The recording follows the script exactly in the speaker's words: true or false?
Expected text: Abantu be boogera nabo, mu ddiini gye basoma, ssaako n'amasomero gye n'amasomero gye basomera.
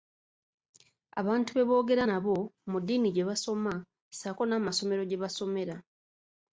false